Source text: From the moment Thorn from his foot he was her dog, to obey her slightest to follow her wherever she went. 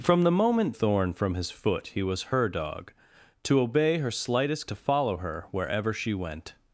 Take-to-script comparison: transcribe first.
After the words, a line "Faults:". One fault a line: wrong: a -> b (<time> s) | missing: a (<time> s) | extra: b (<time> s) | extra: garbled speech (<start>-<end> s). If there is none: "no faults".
From the moment Thorn from his foot he was her dog, to obey her slightest to follow her wherever she went.
Faults:
no faults